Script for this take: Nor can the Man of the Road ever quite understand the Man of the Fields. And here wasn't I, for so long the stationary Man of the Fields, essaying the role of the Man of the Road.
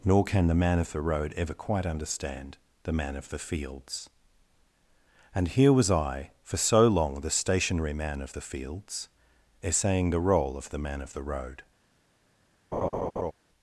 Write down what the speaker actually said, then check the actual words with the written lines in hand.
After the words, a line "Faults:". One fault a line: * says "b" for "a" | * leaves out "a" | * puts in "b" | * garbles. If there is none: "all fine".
Nor can the Man of the Road ever quite understand the Man of the Fields. And here was I, for so long the stationary Man of the Fields, essaying the role of the Man of the Road.
Faults:
* says "was" for "wasn't"